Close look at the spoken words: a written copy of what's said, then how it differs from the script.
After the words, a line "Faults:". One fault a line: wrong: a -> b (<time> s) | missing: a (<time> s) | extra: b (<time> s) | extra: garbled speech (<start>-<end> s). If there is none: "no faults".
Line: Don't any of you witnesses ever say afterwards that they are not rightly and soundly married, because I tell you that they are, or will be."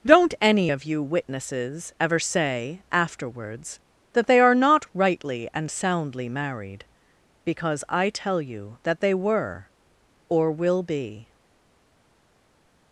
Don't any of you witnesses ever say afterwards that they are not rightly and soundly married, because I tell you that they were, or will be."
Faults:
wrong: are -> were (9.1 s)